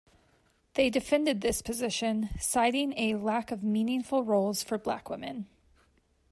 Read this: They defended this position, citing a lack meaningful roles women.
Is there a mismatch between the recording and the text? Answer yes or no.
yes